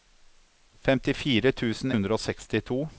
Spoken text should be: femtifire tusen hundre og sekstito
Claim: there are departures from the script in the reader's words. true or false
false